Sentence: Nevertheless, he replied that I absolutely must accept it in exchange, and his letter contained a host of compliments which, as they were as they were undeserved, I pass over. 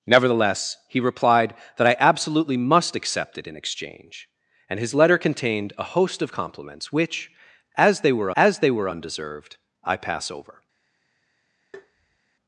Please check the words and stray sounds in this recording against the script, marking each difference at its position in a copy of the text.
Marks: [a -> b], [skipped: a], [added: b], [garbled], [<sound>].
Nevertheless, he replied that I absolutely must accept it in exchange, and his letter contained a host of compliments which, as they were as they were undeserved, I pass over. [tap]